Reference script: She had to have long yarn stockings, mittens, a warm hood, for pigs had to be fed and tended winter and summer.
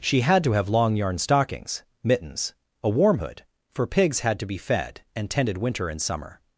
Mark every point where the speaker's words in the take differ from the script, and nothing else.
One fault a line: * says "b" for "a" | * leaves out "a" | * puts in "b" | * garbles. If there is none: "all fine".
all fine